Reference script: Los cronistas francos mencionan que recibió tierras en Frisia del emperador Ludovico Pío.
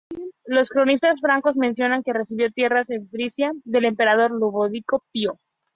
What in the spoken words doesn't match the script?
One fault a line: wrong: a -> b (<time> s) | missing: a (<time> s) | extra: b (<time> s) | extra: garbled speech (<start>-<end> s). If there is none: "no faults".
no faults